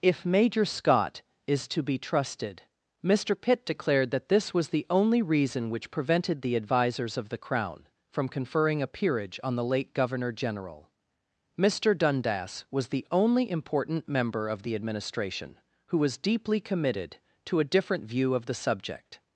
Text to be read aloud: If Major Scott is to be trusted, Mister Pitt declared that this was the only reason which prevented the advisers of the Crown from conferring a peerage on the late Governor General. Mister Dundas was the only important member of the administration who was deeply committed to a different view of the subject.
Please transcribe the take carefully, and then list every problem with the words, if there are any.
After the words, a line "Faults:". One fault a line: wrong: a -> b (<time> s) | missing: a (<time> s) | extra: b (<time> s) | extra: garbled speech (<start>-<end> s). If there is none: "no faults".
If Major Scott is to be trusted, Mister Pitt declared that this was the only reason which prevented the advisers of the Crown from conferring a peerage on the late Governor General. Mister Dundas was the only important member of the administration who was deeply committed to a different view of the subject.
Faults:
no faults